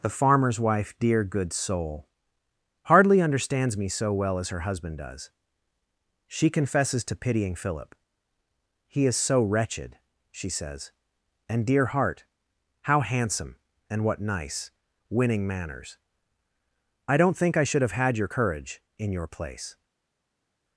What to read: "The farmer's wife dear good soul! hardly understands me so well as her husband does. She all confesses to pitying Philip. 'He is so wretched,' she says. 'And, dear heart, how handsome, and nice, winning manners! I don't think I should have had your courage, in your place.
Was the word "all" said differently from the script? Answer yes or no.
yes